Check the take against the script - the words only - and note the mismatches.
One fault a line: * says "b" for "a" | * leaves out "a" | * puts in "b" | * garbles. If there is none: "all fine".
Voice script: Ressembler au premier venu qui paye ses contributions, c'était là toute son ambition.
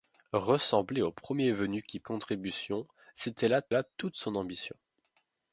* leaves out "paye ses"
* puts in "là"